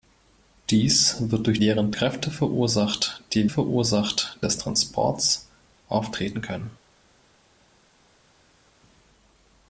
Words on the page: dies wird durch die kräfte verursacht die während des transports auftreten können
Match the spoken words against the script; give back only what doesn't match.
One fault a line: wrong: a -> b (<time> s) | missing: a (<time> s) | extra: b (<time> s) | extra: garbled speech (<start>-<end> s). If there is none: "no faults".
wrong: die -> während (1.6 s)
wrong: während -> verursacht (3.5 s)